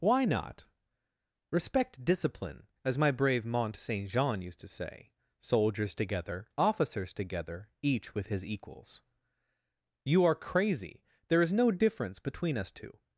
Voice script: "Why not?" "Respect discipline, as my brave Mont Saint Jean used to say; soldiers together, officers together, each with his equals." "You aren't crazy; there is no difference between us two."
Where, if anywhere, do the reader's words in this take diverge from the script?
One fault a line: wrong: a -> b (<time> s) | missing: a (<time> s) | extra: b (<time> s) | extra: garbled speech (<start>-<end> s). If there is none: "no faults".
wrong: aren't -> are (10.2 s)